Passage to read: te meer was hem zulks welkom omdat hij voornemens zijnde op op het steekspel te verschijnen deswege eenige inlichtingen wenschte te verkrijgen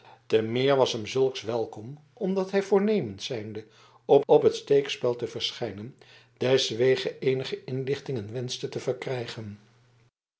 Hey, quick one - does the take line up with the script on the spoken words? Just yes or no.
yes